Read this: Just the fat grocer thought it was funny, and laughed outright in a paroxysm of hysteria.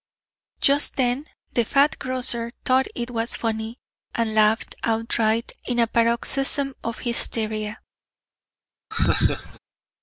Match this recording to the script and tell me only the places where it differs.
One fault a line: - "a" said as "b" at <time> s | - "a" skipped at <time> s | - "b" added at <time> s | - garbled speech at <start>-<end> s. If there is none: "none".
- "then" added at 0.9 s